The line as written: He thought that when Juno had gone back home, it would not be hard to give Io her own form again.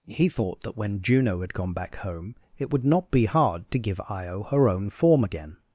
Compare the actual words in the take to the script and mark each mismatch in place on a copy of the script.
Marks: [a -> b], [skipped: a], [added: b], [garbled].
He thought that when Juno had gone back home, it would not be hard to give Io her own form again.